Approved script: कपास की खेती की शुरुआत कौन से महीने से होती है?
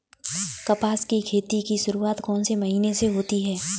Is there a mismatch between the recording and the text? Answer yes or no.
no